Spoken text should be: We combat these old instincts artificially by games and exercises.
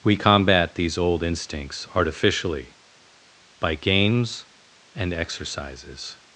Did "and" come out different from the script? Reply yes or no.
no